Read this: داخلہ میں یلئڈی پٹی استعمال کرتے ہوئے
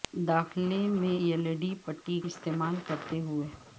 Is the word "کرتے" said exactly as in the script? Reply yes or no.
yes